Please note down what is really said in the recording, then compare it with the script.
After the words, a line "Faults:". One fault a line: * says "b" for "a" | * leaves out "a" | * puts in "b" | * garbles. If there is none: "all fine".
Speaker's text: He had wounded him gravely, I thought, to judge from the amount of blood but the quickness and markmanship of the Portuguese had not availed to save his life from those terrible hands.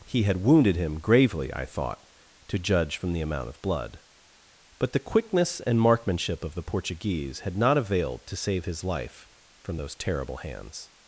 He had wounded him gravely, I thought, to judge from the amount of blood but the quickness and markmanship of the Portuguese had not availed to save his life from those terrible hands.
Faults:
all fine